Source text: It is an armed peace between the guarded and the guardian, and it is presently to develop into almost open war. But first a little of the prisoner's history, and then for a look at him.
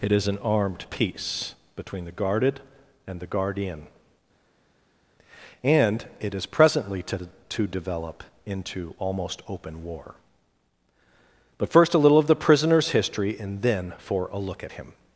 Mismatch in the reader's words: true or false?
true